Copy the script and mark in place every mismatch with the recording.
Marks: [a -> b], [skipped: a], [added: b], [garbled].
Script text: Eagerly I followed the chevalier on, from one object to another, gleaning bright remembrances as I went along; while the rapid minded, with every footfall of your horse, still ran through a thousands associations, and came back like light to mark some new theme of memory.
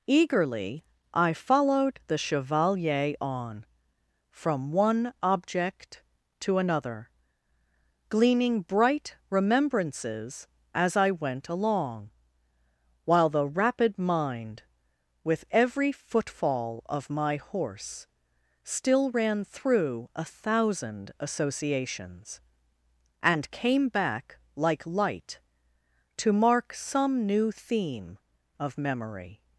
Eagerly I followed the chevalier on, from one object to another, gleaning bright remembrances as I went along; while the rapid [minded, -> mind] with every footfall of [your -> my] horse, still ran through a [thousands -> thousand] associations, and came back like light to mark some new theme of memory.